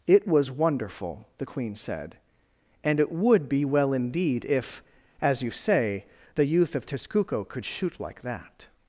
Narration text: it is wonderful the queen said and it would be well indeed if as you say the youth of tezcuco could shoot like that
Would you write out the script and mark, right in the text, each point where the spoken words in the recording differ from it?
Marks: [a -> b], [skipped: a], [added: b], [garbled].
it [is -> was] wonderful the queen said and it would be well indeed if as you say the youth of tezcuco could shoot like that